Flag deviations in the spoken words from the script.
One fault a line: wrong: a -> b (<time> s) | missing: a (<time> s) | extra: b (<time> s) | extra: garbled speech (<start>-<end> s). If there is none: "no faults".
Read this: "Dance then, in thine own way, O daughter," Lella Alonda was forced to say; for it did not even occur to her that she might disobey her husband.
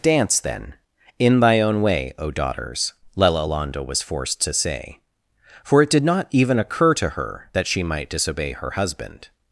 wrong: thine -> thy (1.4 s)
wrong: daughter -> daughters (2.3 s)